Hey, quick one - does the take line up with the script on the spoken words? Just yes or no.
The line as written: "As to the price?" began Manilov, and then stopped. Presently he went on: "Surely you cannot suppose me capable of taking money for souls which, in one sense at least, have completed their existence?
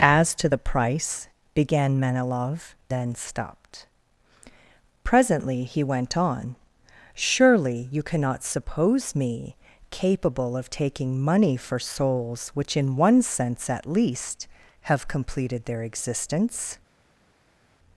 no